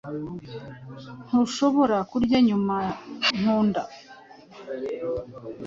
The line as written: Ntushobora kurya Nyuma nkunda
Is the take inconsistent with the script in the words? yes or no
no